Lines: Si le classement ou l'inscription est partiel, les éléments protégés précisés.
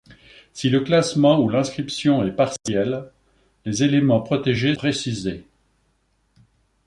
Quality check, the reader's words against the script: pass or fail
pass